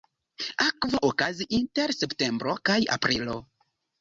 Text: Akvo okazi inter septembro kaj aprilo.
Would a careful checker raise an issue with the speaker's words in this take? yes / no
no